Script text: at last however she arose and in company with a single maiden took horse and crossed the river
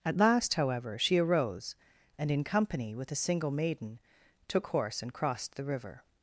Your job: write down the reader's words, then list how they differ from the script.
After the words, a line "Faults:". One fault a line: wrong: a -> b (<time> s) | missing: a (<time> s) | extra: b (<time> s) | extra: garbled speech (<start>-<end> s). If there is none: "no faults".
at last however she arose and in company with a single maiden took horse and crossed the river
Faults:
no faults